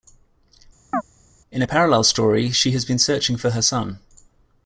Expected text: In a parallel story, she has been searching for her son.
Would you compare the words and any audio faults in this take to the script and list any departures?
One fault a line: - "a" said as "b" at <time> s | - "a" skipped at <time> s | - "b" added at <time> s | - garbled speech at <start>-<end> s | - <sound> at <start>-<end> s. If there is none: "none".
- chirp at 0.9-1.0 s